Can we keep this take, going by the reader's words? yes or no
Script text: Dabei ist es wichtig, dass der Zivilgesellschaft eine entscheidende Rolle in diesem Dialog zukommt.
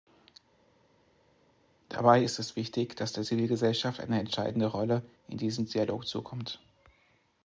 yes